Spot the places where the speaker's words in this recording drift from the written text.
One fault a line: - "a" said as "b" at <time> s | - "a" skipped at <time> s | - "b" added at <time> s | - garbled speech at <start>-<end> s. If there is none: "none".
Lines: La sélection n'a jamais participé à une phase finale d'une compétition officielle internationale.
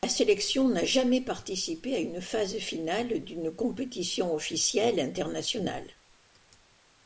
none